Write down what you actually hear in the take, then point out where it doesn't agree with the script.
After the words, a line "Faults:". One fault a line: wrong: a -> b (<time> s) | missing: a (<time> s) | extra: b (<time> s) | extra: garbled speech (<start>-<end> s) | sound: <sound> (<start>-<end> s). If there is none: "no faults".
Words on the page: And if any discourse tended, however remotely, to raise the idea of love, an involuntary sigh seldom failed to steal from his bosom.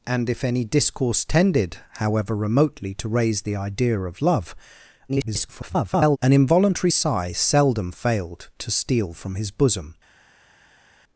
And if any discourse tended, however remotely, to raise the idea of love, [garbled] an involuntary sigh seldom failed to steal from his bosom.
Faults:
extra: garbled speech (5.1-6.2 s)